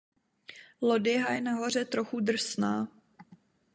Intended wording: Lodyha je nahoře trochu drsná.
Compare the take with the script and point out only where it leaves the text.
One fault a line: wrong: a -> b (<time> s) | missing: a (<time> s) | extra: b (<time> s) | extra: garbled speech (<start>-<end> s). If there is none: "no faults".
no faults